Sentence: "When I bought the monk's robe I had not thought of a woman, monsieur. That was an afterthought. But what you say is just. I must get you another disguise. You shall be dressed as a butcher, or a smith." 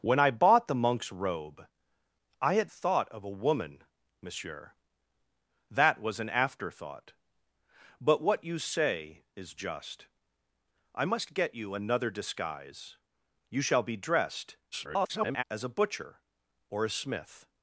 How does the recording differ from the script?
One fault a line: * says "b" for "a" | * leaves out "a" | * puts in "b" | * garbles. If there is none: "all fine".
* leaves out "not"
* garbles